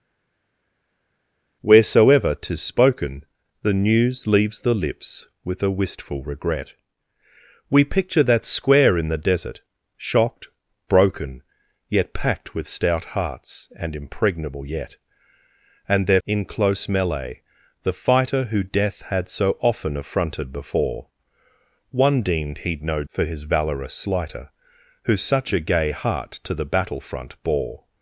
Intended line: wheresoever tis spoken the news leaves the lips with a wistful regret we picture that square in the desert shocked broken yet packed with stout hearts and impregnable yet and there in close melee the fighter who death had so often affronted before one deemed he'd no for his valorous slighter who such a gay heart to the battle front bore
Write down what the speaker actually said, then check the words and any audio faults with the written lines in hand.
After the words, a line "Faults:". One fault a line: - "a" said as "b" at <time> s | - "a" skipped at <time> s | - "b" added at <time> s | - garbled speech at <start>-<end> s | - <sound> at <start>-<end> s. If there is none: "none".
wheresoever tis spoken the news leaves the lips with a wistful regret we picture that square in the desert shocked broken yet packed with stout hearts and impregnable yet and there in close melee the fighter who death had so often affronted before one deemed he'd no for his valorous slighter who such a gay heart to the battle front bore
Faults:
none